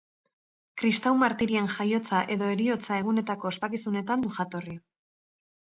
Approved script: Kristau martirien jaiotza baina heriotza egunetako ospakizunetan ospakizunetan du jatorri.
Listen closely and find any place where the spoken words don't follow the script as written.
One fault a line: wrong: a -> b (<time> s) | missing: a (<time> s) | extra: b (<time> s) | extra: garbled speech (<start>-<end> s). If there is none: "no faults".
wrong: baina -> edo (2.4 s)
missing: ospakizunetan (4.3 s)